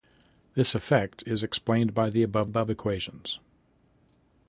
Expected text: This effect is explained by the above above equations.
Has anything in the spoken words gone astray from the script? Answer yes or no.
no